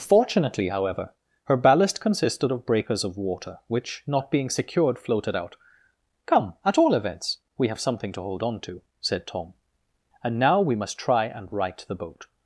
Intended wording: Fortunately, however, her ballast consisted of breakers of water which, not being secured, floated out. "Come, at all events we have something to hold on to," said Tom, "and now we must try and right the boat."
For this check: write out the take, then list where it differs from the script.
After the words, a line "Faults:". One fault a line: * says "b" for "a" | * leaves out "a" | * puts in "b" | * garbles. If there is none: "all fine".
Fortunately, however, her ballast consisted of breakers of water which, not being secured, floated out. "Come, at all events we have something to hold on to," said Tom, "and now we must try and right the boat."
Faults:
all fine